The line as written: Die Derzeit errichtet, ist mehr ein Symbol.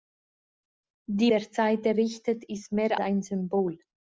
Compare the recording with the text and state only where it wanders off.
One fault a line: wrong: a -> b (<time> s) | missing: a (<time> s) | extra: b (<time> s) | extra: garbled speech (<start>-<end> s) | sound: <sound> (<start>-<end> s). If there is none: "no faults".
no faults